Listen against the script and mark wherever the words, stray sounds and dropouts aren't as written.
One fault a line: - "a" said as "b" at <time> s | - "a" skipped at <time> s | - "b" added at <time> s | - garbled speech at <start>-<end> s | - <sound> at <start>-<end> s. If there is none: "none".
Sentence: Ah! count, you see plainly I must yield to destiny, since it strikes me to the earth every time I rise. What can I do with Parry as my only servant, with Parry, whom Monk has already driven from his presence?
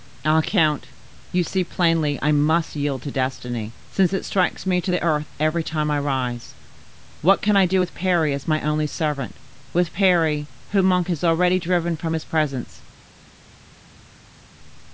none